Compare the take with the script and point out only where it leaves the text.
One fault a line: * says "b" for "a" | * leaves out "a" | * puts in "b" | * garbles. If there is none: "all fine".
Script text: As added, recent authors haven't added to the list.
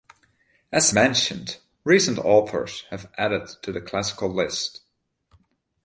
* says "mentioned" for "added"
* says "have" for "haven't"
* puts in "classical"